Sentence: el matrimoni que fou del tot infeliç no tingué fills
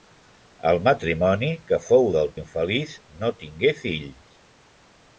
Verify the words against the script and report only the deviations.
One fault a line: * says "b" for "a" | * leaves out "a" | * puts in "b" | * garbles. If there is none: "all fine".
* leaves out "tot"